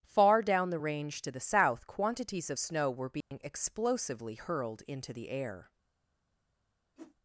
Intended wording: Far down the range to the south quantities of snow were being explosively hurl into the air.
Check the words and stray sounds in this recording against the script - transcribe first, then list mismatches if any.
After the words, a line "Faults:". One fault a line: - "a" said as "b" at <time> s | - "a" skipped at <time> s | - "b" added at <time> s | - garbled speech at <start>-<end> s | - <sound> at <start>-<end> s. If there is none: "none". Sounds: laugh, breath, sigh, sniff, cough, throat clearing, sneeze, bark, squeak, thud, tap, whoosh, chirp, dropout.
Far down the range to the south quantities of snow were being explosively hurled into the air.
Faults:
- dropout at 3.2-3.3 s
- "hurl" said as "hurled" at 4.4 s
- whoosh at 7.0-7.2 s